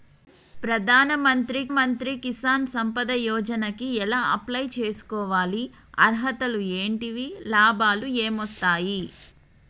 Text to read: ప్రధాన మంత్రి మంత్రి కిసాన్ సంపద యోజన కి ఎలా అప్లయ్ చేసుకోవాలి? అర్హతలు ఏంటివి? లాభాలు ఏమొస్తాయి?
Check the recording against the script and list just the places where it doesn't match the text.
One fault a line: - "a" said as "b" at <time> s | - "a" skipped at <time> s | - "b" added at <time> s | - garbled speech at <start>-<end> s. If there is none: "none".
none